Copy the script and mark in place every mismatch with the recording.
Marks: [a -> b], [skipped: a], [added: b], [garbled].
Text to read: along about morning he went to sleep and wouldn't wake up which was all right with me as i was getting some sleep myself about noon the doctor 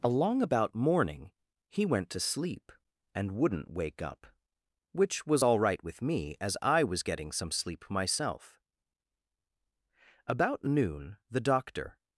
along about morning he went to sleep and wouldn't wake up which was all right with me as i was getting some sleep myself about noon the doctor